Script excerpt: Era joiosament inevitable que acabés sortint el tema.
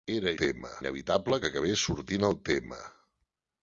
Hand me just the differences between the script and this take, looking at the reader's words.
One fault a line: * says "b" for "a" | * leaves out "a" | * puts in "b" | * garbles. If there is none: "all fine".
* says "tema" for "joiosament"